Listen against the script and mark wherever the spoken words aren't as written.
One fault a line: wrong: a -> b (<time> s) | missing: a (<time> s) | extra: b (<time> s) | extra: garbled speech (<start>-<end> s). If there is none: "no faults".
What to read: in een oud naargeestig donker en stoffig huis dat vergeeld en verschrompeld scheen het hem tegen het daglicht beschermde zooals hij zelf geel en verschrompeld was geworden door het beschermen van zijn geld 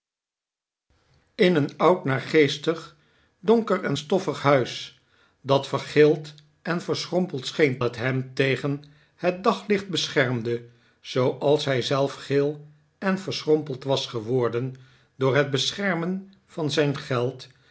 no faults